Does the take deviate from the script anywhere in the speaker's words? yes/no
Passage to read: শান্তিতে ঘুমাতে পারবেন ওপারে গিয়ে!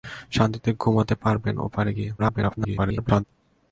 yes